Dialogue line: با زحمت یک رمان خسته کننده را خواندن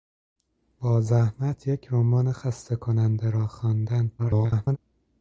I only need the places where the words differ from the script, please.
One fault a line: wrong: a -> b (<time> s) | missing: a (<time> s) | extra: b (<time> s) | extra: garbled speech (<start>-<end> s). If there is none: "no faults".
extra: garbled speech (4.2-4.8 s)